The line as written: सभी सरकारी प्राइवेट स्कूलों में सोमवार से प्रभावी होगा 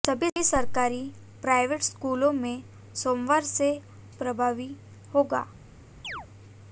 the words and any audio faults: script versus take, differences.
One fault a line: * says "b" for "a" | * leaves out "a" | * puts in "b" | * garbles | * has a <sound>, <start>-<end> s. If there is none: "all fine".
* has a chirp, 6.0-6.3 s